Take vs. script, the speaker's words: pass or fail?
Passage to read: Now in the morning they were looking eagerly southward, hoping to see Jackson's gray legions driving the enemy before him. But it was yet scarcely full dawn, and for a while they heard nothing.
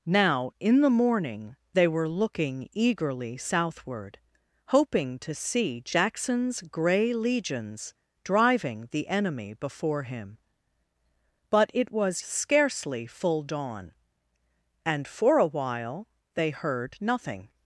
fail